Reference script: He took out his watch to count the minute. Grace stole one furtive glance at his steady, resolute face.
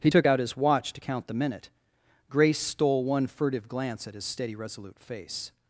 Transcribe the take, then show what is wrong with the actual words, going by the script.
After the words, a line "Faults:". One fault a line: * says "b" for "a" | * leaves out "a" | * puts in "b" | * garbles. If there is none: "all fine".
He took out his watch to count the minute. Grace stole one furtive glance at his steady, resolute face.
Faults:
all fine